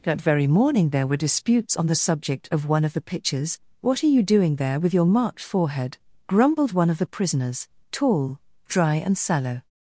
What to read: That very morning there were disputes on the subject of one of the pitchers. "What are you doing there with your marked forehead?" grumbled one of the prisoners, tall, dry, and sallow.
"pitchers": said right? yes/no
no